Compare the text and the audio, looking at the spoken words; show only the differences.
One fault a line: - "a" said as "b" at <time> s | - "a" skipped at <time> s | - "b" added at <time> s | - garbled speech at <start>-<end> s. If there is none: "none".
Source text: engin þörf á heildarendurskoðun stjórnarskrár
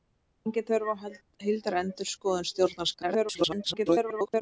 - garbled speech at 3.0-4.4 s